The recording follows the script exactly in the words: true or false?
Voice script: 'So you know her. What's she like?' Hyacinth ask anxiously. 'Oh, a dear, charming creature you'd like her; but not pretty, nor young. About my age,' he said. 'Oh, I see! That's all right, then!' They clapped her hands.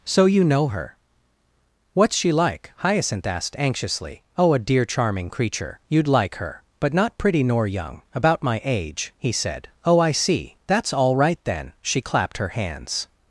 false